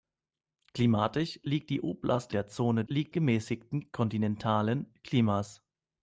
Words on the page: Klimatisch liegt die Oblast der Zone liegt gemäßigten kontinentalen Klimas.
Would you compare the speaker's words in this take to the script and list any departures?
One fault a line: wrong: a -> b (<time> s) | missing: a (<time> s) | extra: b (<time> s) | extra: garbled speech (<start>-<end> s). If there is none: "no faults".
no faults